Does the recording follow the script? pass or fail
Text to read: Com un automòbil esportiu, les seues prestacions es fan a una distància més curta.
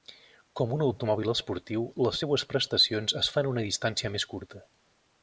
pass